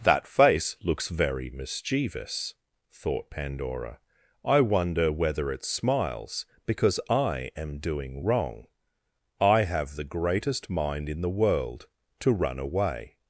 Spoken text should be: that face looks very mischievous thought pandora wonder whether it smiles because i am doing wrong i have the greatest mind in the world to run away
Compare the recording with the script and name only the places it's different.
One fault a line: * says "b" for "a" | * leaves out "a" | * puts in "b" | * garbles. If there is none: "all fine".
* puts in "i"